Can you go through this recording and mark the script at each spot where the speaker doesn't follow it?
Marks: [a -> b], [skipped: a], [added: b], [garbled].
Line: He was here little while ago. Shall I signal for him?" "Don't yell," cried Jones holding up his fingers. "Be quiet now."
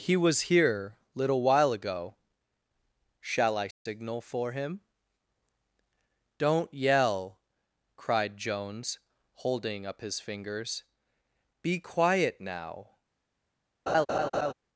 He was here little while ago. Shall I signal for him?" "Don't yell," cried Jones holding up his fingers. "Be quiet now."